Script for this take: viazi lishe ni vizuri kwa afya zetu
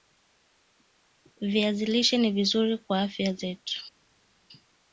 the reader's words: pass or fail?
pass